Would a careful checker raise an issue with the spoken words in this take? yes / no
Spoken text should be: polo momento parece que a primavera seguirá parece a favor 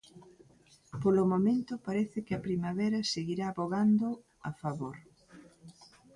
yes